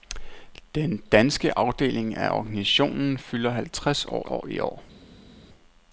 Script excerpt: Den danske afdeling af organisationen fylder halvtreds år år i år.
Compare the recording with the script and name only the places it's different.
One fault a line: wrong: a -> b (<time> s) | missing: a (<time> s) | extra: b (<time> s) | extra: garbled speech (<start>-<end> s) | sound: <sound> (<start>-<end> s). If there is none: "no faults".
no faults